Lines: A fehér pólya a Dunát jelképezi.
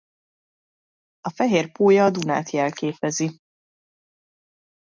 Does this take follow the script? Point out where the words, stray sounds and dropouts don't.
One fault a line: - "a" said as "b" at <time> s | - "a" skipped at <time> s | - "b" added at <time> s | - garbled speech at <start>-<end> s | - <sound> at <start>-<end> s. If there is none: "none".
none